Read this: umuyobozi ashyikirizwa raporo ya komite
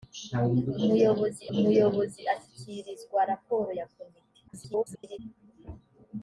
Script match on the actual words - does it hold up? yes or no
no